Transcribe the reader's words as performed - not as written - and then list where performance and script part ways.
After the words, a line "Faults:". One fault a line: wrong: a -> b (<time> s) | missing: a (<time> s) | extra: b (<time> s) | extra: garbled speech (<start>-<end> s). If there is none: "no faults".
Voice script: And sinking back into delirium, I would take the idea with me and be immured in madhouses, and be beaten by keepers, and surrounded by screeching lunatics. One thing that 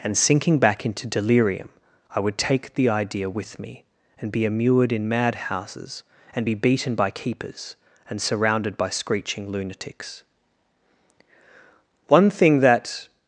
And sinking back into delirium, I would take the idea with me and be immured in madhouses, and be beaten by keepers, and surrounded by screeching lunatics. One thing that
Faults:
no faults